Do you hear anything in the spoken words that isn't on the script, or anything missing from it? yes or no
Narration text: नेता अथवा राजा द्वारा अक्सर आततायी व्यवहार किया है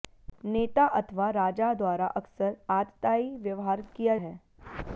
no